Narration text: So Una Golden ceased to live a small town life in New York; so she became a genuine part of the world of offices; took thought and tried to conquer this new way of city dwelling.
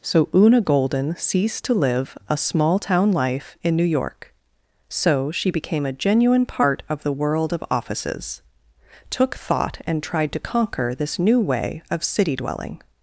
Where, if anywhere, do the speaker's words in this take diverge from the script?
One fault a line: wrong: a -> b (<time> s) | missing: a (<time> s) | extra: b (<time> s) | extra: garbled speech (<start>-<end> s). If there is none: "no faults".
no faults